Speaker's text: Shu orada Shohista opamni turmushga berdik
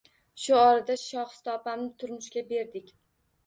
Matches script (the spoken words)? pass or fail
pass